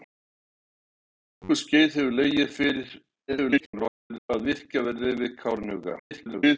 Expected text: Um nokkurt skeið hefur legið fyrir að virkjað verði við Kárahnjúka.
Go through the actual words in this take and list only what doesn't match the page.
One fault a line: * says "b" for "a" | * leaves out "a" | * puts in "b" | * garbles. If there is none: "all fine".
* garbles
* garbles